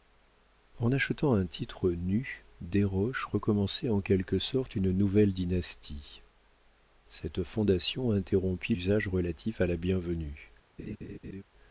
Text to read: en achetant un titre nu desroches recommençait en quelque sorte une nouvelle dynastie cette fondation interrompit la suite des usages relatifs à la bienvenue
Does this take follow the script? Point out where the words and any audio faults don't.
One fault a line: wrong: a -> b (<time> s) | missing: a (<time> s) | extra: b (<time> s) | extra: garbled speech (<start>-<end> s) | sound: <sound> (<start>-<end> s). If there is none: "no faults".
missing: la suite des (8.7 s)
sound: laugh (10.8-11.4 s)